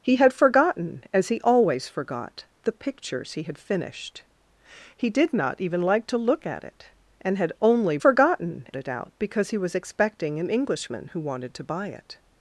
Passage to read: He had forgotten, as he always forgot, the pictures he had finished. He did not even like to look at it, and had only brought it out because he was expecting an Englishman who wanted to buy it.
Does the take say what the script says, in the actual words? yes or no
no